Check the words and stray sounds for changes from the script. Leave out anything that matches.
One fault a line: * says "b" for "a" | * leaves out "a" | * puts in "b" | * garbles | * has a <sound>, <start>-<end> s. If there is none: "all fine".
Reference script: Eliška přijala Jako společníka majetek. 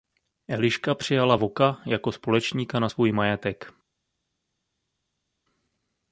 * puts in "Voka"
* puts in "na svůj"